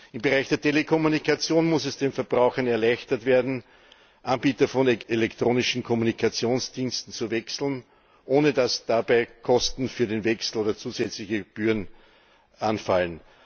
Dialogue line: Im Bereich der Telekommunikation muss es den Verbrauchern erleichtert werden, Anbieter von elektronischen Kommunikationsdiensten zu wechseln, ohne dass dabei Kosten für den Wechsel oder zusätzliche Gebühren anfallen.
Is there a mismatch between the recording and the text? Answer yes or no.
no